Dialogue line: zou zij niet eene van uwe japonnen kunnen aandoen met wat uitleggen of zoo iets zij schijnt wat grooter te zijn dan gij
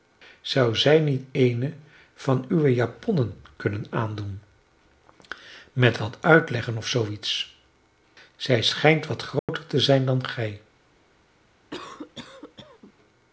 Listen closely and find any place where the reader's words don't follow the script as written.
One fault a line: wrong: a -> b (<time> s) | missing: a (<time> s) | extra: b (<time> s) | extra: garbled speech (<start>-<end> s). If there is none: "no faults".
no faults